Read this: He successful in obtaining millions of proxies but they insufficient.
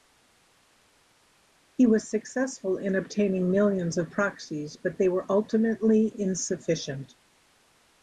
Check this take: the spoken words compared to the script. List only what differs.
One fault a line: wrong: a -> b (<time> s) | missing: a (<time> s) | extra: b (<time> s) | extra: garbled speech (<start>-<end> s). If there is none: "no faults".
extra: was (1.9 s)
extra: were ultimately (5.1 s)